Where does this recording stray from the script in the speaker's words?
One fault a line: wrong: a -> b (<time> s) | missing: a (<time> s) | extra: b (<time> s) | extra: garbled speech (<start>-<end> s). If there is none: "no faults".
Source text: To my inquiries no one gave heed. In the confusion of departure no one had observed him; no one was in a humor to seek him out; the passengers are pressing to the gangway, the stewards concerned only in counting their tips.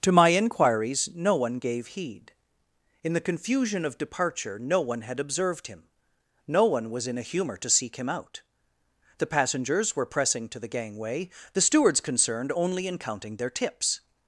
wrong: are -> were (9.9 s)